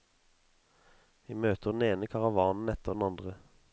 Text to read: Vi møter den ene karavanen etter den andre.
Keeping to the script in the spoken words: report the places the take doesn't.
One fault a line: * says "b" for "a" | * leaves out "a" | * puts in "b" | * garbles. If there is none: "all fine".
all fine